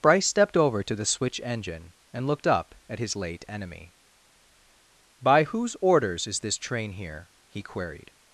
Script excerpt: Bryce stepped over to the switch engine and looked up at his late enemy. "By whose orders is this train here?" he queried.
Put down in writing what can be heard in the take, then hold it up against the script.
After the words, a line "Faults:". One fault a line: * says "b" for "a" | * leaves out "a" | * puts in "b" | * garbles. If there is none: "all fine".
Bryce stepped over to the switch engine and looked up at his late enemy. "By whose orders is this train here?" he queried.
Faults:
all fine